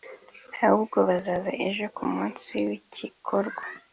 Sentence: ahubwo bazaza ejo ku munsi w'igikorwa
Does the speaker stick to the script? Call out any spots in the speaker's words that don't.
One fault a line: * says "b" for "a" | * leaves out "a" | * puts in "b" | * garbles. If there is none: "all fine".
all fine